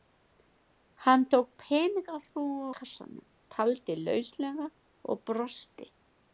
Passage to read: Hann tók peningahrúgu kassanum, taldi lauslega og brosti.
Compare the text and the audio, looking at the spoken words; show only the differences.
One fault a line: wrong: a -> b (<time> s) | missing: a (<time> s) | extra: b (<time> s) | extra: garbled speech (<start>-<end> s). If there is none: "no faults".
no faults